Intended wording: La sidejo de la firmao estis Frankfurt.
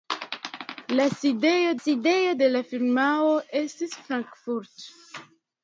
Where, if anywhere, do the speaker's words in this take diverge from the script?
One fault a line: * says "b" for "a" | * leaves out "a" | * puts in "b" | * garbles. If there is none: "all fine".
* puts in "sidejo"